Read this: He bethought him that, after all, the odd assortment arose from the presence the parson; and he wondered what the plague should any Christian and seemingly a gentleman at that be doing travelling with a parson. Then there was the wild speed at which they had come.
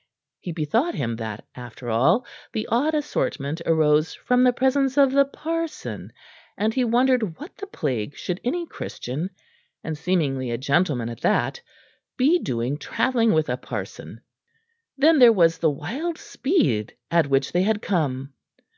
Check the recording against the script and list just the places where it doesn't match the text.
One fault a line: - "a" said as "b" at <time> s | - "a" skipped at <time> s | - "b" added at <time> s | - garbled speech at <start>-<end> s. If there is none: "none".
- "of" added at 5.0 s